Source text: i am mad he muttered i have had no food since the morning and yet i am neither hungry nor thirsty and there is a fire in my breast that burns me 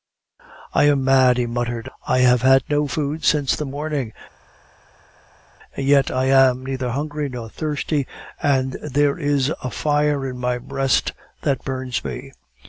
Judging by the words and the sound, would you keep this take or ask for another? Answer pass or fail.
pass